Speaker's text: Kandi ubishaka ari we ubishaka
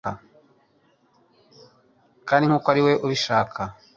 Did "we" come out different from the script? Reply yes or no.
no